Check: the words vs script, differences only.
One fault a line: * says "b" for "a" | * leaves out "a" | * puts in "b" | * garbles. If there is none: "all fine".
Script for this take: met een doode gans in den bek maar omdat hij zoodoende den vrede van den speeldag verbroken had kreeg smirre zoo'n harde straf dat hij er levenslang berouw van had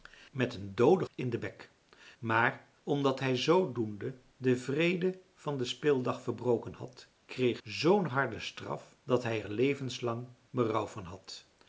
* leaves out "gans"
* leaves out "smirre"